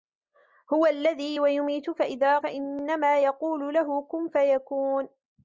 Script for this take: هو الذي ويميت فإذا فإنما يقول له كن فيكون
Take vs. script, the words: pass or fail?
pass